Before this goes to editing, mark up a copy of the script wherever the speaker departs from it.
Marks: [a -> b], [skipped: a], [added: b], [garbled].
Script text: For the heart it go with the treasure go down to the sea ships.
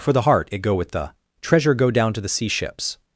For the heart it go with the treasure go down to the sea ships.